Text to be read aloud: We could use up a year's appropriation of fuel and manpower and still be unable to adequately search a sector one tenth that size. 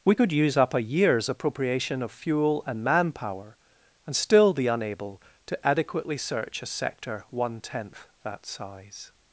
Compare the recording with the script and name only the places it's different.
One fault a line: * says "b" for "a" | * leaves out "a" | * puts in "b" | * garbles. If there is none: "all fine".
all fine